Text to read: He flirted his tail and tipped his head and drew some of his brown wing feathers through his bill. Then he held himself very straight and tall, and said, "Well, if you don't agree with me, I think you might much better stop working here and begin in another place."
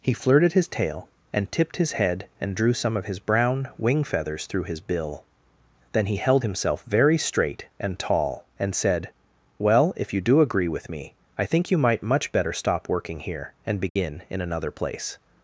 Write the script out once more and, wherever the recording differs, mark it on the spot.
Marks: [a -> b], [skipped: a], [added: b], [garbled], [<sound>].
He flirted his tail and tipped his head and drew some of his brown wing feathers through his bill. Then he held himself very straight and tall, and said, "Well, if you [don't -> do] agree with me, I think you might much better stop working here and begin [dropout] in another place."